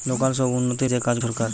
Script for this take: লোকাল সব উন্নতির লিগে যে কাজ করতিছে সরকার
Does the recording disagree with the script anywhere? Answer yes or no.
yes